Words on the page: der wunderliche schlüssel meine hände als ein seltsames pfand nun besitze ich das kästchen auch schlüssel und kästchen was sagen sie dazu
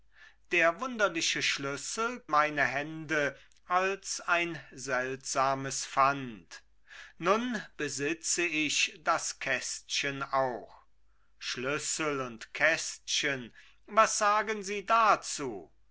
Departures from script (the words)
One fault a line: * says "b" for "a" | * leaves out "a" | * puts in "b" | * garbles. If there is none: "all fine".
all fine